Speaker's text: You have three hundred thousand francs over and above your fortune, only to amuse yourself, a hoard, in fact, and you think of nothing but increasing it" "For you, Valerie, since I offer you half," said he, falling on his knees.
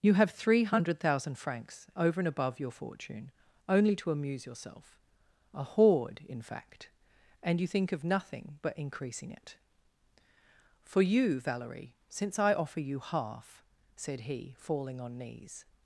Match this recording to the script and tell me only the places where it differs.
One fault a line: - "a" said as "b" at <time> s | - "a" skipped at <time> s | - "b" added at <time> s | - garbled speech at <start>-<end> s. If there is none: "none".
- "his" skipped at 15.2 s